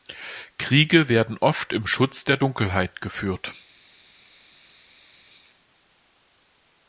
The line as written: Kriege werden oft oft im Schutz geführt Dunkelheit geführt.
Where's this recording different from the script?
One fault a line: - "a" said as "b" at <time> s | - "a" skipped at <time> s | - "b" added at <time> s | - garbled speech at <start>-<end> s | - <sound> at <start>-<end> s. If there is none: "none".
- "oft" skipped at 1.7 s
- "geführt" said as "der" at 2.2 s